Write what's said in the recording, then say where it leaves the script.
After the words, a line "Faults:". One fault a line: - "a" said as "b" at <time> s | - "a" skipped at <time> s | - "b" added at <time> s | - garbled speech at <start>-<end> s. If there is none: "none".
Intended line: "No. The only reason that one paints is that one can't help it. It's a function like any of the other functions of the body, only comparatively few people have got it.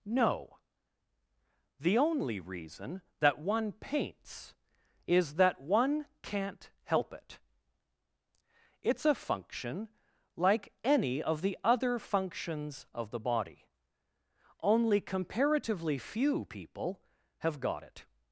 "No. The only reason that one paints is that one can't help it. It's a function like any of the other functions of the body, only comparatively few people have got it.
Faults:
none